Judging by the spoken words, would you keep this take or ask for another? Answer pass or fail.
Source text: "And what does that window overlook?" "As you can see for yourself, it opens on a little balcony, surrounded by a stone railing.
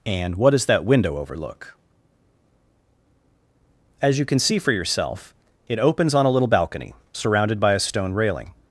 pass